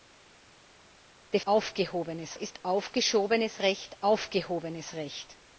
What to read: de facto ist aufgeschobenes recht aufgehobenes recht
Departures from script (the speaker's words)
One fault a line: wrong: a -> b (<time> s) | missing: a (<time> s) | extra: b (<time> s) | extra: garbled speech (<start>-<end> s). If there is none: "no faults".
wrong: facto -> aufgehobenes (1.4 s)